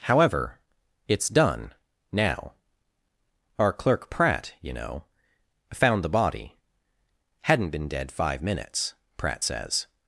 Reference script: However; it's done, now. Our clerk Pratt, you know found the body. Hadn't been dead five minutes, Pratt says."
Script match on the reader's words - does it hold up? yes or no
yes